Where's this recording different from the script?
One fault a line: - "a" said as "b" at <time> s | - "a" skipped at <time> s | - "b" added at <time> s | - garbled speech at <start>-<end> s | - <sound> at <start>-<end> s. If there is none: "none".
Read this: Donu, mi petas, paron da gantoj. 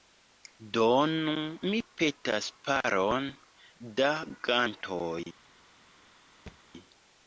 - thud at 6.5-6.6 s